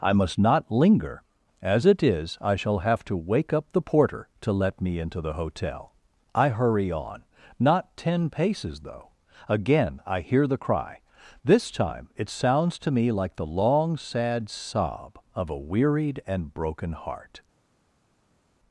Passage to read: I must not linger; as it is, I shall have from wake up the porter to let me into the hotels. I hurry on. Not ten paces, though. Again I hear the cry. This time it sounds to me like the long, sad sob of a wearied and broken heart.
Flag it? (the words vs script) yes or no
yes